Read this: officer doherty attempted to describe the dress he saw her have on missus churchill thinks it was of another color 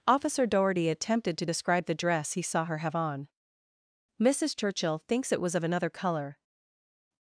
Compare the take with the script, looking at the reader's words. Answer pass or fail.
pass